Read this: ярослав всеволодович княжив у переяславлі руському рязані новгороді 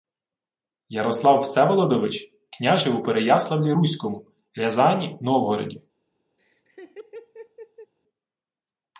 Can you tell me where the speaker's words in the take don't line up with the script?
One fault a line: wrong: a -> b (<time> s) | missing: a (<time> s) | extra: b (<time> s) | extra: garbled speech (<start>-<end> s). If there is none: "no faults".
no faults